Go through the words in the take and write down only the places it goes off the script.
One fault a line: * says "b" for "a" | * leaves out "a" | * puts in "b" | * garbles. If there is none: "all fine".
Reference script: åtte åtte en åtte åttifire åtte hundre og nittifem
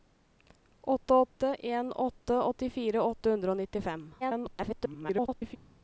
* garbles